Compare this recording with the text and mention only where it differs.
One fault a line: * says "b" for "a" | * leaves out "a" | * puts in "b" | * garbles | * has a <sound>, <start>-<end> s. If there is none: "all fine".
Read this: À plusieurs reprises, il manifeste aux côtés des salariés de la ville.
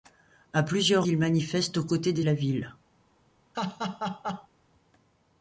* leaves out "reprises"
* leaves out "salariés de"
* has a laugh, 3.5-4.5 s